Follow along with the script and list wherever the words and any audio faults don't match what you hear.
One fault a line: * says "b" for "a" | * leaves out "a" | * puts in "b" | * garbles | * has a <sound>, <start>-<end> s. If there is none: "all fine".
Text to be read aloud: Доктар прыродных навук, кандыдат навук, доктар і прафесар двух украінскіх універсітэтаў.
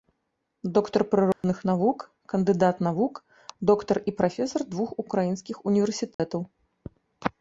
* has a dropout, 1.3-1.4 s
* has a dropout, 6.1-6.2 s